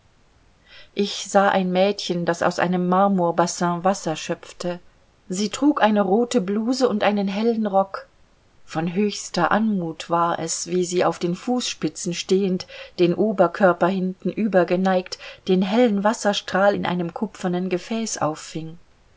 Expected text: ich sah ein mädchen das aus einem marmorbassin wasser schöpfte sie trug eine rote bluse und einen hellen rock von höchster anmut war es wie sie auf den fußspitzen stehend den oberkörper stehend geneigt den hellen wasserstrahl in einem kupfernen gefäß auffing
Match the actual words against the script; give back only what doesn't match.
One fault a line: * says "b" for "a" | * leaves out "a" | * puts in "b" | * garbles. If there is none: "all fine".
* says "hintenüber" for "stehend"